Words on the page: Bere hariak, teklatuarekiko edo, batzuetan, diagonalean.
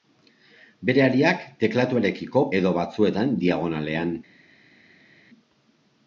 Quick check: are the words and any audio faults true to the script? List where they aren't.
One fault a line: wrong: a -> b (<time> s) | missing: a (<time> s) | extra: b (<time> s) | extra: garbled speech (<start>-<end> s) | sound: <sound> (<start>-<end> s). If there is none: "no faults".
no faults